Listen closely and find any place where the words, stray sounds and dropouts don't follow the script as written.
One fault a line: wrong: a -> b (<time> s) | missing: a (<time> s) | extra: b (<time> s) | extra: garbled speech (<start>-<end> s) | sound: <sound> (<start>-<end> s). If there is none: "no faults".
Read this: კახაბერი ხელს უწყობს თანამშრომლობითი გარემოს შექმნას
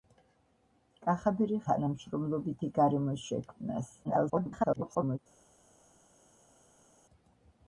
missing: ხელს უწყობს (1.6 s)
extra: garbled speech (4.0-5.2 s)